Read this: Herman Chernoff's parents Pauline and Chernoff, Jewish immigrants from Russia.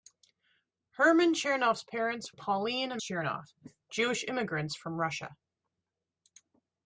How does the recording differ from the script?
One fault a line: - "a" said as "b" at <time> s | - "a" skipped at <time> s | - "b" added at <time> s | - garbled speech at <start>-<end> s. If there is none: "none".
none